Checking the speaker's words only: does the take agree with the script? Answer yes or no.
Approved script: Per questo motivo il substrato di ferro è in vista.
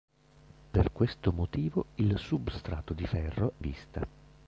no